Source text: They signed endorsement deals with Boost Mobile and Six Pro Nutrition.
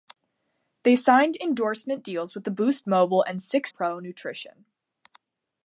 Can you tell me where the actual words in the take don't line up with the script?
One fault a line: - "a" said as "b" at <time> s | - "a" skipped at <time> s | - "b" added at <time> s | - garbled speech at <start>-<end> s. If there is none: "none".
none